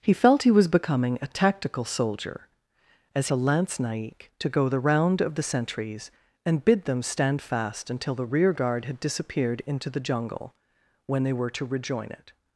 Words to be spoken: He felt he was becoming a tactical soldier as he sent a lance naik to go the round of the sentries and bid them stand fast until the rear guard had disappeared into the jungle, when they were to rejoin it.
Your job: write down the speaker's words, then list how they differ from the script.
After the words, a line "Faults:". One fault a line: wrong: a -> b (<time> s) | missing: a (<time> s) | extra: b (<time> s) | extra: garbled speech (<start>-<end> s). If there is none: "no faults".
He felt he was becoming a tactical soldier as a lance naik to go the round of the sentries and bid them stand fast until the rear guard had disappeared into the jungle, when they were to rejoin it.
Faults:
missing: he sent (3.3 s)